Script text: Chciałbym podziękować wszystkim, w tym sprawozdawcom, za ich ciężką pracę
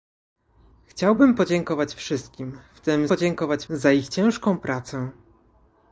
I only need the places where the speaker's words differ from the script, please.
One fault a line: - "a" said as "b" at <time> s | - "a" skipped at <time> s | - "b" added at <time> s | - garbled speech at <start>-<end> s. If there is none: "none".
- "sprawozdawcom" said as "podziękować" at 3.1 s